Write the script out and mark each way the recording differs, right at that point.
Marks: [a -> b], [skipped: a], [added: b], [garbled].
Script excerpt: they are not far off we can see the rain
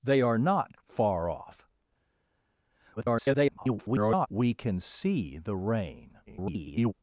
they are not far off [garbled] we can see the rain [garbled]